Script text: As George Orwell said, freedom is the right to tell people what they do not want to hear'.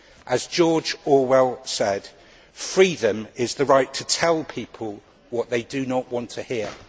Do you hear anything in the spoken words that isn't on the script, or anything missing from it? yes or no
no